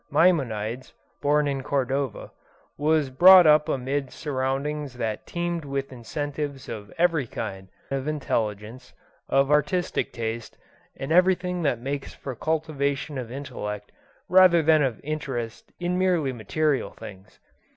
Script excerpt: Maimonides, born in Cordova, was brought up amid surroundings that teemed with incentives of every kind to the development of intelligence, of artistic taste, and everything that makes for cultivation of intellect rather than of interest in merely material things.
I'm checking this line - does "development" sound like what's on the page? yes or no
no